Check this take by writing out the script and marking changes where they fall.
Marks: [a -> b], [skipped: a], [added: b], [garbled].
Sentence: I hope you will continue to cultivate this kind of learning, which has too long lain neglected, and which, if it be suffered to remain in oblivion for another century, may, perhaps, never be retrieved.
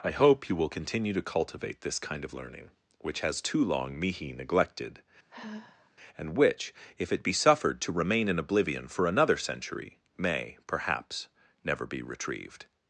I hope you will continue to cultivate this kind of learning, which has too long [lain -> mihi] neglected, and which, if it be suffered to remain in oblivion for another century, may, perhaps, never be retrieved.